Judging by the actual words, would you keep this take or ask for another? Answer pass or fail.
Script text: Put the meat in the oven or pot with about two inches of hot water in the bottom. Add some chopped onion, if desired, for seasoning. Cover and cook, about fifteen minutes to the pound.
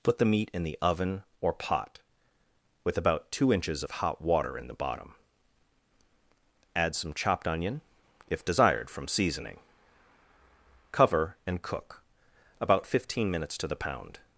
fail